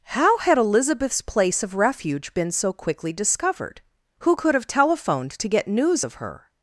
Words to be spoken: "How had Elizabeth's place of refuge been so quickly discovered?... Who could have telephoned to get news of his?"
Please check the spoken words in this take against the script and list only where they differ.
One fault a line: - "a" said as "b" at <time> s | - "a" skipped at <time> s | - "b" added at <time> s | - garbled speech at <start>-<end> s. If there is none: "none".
- "his" said as "her" at 6.1 s